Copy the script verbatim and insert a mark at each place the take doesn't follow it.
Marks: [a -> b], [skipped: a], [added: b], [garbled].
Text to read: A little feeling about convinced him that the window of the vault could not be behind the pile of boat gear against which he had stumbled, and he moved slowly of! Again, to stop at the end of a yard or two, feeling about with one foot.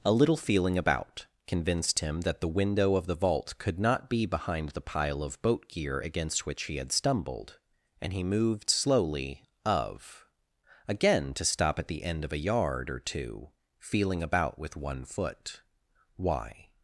A little feeling about convinced him that the window of the vault could not be behind the pile of boat gear against which he had stumbled, and he moved slowly of! Again, to stop at the end of a yard or two, feeling about with one foot. [added: Why]